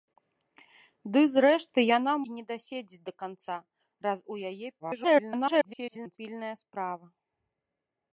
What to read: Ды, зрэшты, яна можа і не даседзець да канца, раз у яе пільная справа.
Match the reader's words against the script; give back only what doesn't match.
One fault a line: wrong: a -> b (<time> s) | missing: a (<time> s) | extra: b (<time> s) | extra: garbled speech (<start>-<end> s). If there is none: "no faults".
missing: можа (2.1 s)
extra: garbled speech (4.8-6.2 s)